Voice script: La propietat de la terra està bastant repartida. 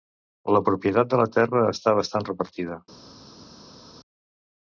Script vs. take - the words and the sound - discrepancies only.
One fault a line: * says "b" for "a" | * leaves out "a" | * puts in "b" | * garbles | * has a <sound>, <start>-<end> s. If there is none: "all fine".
all fine